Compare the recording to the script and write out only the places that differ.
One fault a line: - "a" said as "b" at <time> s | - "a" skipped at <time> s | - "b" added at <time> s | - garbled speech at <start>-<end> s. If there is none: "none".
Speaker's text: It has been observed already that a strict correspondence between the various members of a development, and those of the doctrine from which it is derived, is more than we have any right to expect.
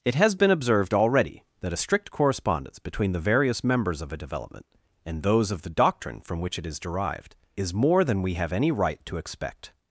none